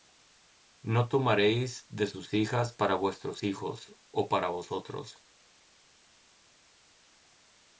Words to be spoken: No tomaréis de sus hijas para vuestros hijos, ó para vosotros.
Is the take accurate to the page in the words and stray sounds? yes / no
yes